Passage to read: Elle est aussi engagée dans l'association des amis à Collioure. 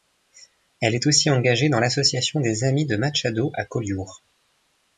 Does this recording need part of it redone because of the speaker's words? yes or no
yes